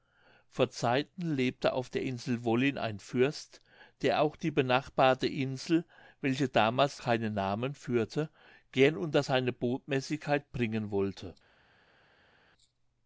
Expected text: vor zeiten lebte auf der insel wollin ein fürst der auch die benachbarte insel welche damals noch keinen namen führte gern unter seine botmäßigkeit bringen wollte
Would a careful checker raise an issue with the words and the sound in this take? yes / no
yes